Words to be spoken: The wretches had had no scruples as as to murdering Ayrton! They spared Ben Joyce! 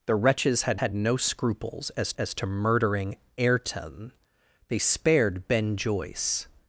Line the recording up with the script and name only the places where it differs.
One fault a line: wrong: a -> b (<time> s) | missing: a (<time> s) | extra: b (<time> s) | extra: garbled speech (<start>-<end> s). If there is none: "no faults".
no faults